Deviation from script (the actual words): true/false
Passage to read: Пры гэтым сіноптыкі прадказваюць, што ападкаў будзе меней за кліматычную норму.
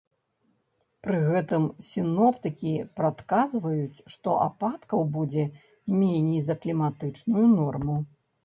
false